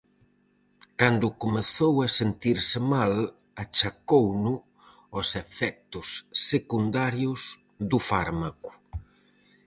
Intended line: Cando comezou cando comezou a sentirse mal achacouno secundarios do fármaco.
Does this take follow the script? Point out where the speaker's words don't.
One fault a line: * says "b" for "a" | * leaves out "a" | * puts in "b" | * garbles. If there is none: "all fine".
* leaves out "cando comezou"
* puts in "aos efectos"